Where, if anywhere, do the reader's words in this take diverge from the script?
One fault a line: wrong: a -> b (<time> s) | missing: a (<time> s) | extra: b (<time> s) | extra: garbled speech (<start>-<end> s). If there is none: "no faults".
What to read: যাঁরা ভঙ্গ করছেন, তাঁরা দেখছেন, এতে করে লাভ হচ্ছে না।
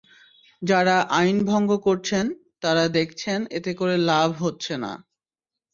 extra: আইন (1.2 s)